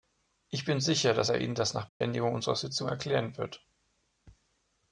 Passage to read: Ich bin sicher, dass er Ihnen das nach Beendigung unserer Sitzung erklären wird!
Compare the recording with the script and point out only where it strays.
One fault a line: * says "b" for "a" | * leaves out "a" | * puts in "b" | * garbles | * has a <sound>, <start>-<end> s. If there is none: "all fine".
* has a dropout, 1.9-2.0 s